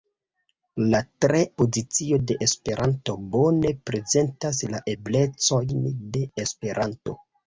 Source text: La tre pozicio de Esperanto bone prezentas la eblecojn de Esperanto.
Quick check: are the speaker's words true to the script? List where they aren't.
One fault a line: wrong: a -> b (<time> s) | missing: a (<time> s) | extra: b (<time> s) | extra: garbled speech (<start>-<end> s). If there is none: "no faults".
no faults